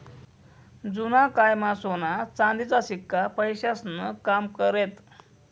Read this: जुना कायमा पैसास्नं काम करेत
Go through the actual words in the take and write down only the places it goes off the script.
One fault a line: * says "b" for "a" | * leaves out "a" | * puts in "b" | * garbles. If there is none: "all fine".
* puts in "सोना चांदीचा शिक्का"